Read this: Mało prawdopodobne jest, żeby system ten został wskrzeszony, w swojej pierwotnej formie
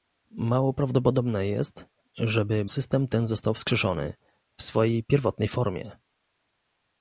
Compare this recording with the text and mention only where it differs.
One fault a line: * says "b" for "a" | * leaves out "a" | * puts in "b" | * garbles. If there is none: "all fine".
all fine